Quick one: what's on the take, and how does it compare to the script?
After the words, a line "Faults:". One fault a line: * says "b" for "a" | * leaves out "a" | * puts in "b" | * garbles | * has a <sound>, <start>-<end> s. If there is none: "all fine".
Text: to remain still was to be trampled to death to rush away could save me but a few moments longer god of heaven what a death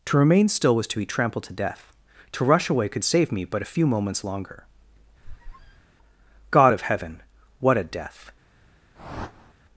to remain still was to be trampled to death to rush away could save me but a few moments longer god of heaven what a death
Faults:
* has a squeak, 5.2-5.9 s
* has a whoosh, 8.9-9.5 s